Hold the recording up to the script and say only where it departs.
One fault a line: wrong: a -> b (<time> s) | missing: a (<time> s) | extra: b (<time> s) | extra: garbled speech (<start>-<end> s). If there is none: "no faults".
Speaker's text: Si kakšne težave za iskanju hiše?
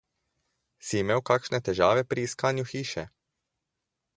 extra: imel (1.0 s)
wrong: za -> pri (2.0 s)